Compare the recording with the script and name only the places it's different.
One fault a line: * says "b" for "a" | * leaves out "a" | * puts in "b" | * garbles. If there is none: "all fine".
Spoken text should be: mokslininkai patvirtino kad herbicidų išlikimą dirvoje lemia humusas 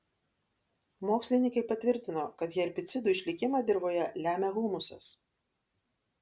all fine